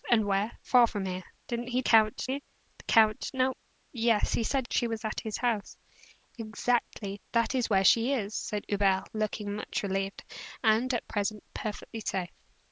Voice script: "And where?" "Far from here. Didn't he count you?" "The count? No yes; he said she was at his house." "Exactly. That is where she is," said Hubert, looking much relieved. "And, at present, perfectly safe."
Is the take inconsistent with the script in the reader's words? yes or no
no